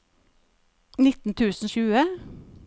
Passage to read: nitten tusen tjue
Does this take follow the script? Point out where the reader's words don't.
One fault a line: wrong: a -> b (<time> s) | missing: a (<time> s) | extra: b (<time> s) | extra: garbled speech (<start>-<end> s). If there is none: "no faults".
no faults